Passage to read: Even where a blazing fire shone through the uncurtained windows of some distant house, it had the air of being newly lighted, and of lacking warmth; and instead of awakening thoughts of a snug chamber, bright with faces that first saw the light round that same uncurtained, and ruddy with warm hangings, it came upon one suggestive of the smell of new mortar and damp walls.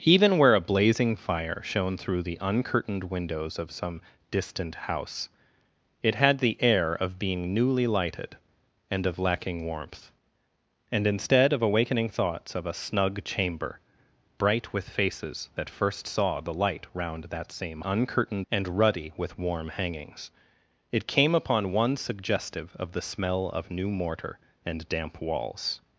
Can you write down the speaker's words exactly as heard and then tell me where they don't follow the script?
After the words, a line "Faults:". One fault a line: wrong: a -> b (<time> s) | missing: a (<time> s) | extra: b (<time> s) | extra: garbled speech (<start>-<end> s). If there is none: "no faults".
Even where a blazing fire shone through the uncurtained windows of some distant house, it had the air of being newly lighted, and of lacking warmth; and instead of awakening thoughts of a snug chamber, bright with faces that first saw the light round that same uncurtained, and ruddy with warm hangings, it came upon one suggestive of the smell of new mortar and damp walls.
Faults:
no faults